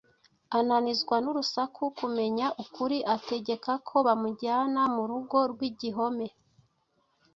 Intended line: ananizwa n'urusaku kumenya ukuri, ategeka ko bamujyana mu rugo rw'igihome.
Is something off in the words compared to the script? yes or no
no